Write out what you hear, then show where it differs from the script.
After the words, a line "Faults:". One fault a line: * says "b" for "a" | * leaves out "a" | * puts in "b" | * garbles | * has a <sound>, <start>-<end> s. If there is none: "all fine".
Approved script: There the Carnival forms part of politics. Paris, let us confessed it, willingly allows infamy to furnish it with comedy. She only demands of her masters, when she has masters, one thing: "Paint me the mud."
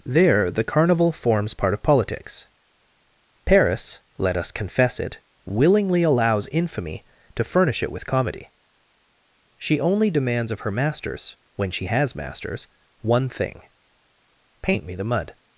There the Carnival forms part of politics. Paris, let us confess it, willingly allows infamy to furnish it with comedy. She only demands of her masters, when she has masters, one thing: "Paint me the mud."
Faults:
* says "confess" for "confessed"